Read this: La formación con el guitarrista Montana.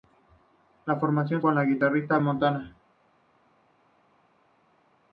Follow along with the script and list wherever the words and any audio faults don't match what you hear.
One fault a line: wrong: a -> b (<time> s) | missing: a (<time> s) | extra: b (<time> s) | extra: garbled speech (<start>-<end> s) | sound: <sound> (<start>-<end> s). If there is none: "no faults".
no faults